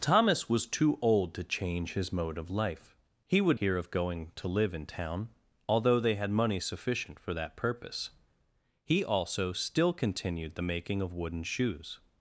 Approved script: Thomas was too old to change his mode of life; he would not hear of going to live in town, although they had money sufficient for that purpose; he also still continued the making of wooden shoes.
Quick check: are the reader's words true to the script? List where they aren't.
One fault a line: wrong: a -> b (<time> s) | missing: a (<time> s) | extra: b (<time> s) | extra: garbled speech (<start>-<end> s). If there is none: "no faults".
missing: not (3.6 s)